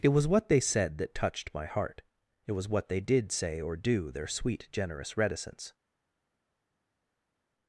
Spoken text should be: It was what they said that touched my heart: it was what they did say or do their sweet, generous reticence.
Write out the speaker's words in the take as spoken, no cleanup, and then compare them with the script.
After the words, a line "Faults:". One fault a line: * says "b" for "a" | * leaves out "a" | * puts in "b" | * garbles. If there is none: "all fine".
It was what they said that touched my heart: it was what they did say or do their sweet, generous reticence.
Faults:
all fine